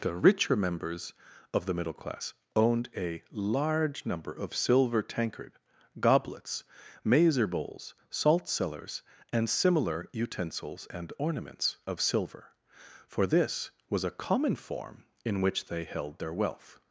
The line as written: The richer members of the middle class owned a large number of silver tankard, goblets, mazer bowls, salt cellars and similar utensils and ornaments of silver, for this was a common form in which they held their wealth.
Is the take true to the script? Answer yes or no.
yes